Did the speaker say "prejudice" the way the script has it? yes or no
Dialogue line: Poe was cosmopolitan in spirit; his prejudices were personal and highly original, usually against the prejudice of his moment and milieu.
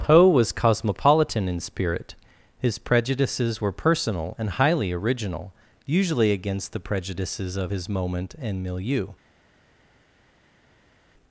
no